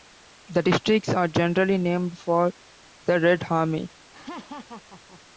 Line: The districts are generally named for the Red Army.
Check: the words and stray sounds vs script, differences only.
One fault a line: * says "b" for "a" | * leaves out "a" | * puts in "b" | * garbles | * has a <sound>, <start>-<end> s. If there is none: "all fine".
* has a laugh, 4.1-5.2 s